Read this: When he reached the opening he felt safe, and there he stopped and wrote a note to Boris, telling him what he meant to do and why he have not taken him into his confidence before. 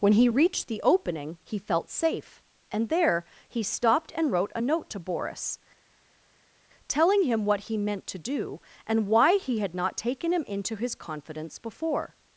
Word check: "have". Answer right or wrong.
wrong